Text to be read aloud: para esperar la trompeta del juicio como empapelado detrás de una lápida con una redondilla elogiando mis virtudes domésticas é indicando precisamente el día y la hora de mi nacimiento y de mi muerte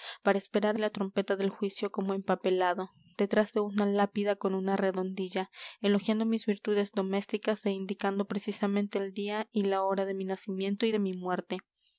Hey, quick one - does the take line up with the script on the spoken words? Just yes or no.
yes